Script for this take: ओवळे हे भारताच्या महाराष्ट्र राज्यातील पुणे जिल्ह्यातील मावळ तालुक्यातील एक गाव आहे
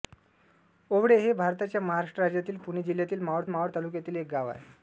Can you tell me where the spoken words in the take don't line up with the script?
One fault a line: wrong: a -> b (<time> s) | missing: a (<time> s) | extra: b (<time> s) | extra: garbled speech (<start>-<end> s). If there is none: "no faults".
extra: मावळ (3.5 s)